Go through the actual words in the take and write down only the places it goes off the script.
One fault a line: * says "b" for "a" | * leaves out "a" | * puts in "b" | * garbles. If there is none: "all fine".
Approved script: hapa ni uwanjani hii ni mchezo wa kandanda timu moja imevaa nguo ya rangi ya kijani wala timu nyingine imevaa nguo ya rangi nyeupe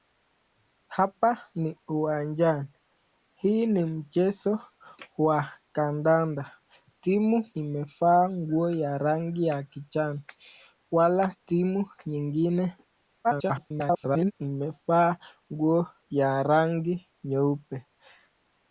* leaves out "moja"
* garbles